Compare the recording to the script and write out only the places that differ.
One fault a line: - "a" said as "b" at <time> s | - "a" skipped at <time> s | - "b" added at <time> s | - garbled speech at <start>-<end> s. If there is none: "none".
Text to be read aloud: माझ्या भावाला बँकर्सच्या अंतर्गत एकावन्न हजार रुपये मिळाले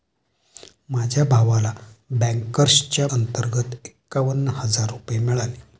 none